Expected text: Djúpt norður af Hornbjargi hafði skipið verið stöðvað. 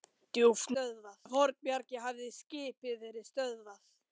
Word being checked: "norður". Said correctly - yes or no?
no